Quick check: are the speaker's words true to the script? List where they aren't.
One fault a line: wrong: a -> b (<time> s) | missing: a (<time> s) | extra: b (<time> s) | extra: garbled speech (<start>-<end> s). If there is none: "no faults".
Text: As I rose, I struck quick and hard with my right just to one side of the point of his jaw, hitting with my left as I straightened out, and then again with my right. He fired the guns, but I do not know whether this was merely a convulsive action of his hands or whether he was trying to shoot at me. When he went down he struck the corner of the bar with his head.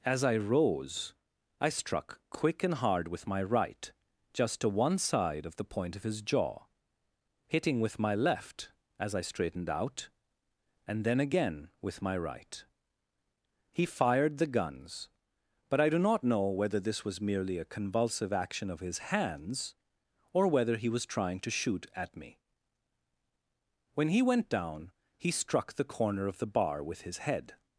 no faults